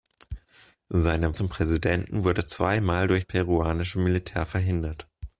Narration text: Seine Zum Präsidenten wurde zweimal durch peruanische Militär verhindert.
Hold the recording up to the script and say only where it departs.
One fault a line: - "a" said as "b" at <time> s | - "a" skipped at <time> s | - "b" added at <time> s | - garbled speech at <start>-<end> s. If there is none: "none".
none